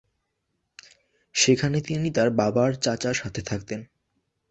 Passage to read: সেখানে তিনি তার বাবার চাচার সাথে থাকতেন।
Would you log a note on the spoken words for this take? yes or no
no